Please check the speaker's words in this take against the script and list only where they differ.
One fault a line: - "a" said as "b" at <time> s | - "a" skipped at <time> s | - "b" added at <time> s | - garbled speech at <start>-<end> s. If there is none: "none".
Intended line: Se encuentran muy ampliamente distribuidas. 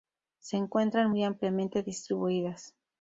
none